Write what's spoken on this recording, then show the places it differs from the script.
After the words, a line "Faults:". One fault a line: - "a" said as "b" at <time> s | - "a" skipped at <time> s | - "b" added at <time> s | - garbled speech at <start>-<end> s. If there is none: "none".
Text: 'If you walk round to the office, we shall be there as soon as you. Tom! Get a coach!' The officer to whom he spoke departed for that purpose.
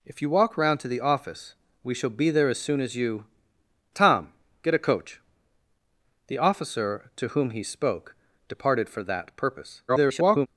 'If you walk round to the office, we shall be there as soon as you. Tom! Get a coach!' The officer to whom he spoke departed for that purpose. [garbled]
Faults:
- garbled speech at 9.9-10.5 s